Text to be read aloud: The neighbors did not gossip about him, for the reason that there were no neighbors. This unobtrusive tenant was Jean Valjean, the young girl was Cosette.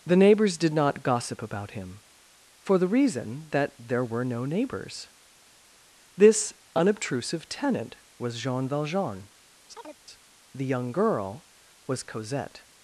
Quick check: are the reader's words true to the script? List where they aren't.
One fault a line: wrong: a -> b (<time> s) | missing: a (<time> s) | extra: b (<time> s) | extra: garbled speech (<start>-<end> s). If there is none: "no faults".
no faults